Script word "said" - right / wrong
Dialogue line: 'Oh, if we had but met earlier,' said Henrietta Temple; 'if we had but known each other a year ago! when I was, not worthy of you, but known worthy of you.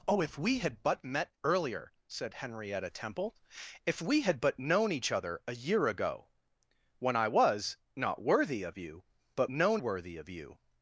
right